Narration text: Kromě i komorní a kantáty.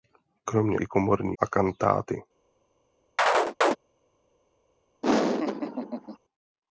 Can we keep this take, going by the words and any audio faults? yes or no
no